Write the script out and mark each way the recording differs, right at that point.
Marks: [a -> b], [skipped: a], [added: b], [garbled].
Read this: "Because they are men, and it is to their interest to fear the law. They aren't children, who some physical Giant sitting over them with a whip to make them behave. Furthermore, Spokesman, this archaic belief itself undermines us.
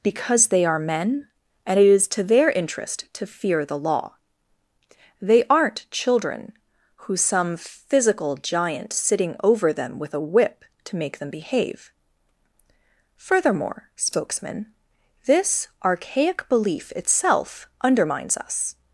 "Because they are men, and it is to their interest to fear the law. They aren't children, who some physical Giant sitting over them with a whip to make them behave. Furthermore, Spokesman, this archaic belief itself undermines us.